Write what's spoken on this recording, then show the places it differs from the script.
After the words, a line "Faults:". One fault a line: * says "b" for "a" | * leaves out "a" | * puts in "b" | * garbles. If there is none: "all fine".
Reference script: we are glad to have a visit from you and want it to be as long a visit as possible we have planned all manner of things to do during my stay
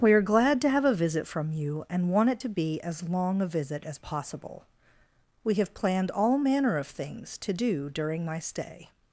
we are glad to have a visit from you and want it to be as long a visit as possible we have planned all manner of things to do during my stay
Faults:
all fine